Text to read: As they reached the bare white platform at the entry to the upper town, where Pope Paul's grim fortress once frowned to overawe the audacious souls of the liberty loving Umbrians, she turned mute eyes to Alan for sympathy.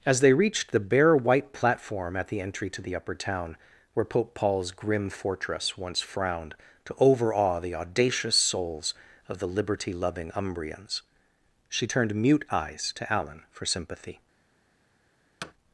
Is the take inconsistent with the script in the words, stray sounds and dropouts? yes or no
yes